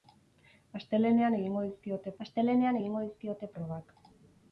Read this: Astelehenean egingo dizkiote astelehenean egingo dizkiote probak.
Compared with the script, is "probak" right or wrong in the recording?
right